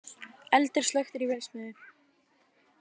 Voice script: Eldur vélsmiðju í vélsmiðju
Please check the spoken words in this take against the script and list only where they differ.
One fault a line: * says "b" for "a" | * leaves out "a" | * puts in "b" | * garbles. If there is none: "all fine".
* says "slökktur" for "vélsmiðju"